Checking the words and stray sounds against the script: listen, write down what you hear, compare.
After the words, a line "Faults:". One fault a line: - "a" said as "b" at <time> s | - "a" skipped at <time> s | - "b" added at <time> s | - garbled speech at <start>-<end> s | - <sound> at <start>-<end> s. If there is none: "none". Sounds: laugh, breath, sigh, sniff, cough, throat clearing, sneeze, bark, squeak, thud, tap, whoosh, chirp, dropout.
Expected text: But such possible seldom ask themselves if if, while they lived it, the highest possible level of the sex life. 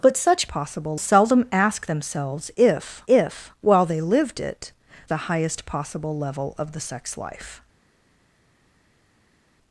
But such possible seldom ask themselves if if, while they lived it, the highest possible level of the sex life.
Faults:
none